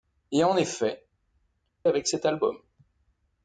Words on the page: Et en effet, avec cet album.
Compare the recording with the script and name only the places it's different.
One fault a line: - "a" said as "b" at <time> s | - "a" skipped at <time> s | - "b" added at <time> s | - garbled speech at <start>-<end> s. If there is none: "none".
none